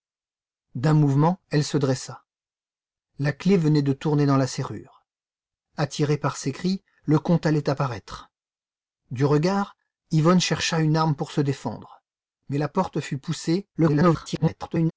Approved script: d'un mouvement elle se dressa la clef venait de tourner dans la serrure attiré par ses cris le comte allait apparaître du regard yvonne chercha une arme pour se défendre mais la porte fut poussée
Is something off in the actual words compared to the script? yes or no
yes